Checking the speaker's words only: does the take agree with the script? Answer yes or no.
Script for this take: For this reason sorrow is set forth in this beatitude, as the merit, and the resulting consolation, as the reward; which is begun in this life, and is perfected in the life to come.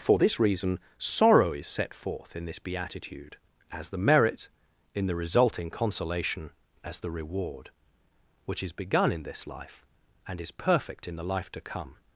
no